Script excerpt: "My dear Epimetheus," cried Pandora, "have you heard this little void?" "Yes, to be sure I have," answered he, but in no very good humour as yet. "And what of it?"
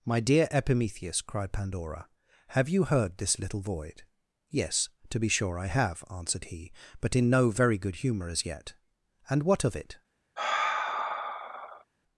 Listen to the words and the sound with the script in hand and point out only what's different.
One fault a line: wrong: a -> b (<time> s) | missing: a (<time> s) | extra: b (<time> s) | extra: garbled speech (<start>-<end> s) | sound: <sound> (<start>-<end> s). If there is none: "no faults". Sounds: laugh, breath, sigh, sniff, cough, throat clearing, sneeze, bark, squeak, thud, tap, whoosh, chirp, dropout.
sound: sigh (10.4-11.8 s)